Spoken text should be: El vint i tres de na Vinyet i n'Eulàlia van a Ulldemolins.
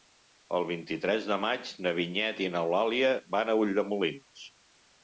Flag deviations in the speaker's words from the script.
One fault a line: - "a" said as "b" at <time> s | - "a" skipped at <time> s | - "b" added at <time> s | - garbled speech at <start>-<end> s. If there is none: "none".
- "maig" added at 1.4 s